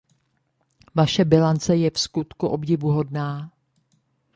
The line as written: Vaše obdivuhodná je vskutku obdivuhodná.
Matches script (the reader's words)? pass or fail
fail